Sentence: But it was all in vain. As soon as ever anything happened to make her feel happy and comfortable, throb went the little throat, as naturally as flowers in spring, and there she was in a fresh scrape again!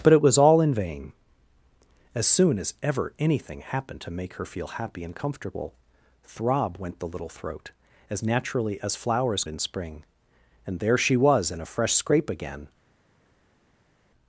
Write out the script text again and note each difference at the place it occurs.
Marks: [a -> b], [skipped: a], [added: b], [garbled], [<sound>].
But it was all in vain. As soon as ever anything happened to make her feel happy and comfortable, throb went the little throat, as naturally as flowers in spring, and there she was in a fresh scrape again!